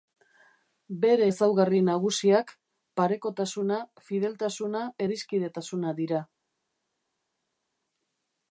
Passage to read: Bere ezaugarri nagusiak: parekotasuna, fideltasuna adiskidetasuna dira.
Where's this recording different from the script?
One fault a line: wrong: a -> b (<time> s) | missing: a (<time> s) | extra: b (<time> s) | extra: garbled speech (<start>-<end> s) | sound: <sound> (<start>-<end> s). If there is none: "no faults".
no faults